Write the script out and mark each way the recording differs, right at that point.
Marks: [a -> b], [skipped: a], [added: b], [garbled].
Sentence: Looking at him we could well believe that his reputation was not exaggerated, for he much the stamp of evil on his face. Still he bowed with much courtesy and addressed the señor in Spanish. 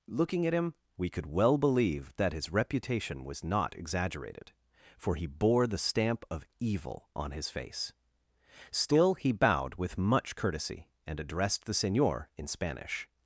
Looking at him we could well believe that his reputation was not exaggerated, for he [much -> bore] the stamp of evil on his face. Still he bowed with much courtesy and addressed the señor in Spanish.